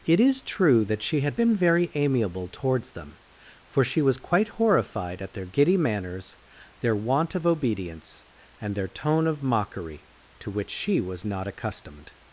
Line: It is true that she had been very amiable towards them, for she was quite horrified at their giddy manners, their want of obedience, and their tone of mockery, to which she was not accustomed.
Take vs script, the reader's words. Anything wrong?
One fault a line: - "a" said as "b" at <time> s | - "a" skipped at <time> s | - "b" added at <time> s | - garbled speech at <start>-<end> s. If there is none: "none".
none